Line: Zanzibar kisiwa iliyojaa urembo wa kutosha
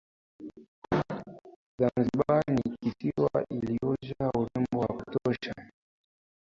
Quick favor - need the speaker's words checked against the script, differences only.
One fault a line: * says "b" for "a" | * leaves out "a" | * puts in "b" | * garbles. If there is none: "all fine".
* puts in "ni"